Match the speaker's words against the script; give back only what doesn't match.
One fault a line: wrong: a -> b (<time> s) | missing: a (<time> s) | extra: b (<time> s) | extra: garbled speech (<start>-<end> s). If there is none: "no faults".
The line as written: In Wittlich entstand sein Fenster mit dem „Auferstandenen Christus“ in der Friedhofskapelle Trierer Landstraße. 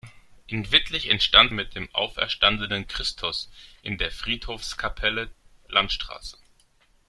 missing: sein Fenster (1.5 s)
missing: Trierer (5.3 s)